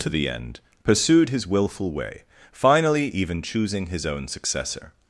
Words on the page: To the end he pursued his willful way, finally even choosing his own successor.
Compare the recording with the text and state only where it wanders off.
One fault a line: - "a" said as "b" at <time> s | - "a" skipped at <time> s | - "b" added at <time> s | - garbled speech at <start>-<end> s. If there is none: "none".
- "he" skipped at 0.6 s